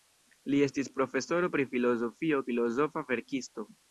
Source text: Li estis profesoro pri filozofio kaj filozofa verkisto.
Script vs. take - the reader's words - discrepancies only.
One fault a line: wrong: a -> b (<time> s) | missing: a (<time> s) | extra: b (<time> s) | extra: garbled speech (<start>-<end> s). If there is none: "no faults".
missing: kaj (2.4 s)